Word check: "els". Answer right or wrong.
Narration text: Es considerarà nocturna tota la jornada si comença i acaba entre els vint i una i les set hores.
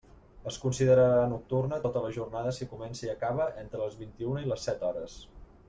wrong